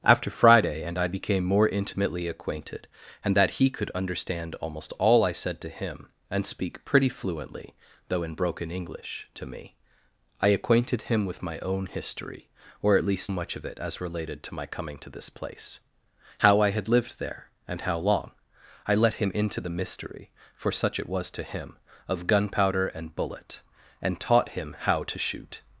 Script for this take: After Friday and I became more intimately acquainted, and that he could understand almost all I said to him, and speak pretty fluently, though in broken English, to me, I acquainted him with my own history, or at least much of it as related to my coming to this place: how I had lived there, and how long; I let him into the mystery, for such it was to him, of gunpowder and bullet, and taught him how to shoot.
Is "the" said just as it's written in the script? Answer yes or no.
yes